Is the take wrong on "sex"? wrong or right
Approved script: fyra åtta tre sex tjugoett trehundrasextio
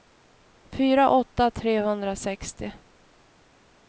wrong